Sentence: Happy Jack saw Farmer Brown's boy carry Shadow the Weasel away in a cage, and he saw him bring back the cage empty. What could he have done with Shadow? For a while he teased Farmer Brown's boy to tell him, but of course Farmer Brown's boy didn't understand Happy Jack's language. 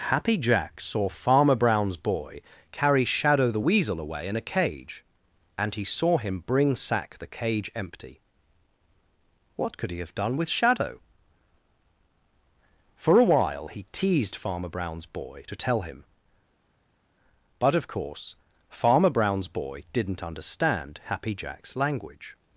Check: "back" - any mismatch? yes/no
yes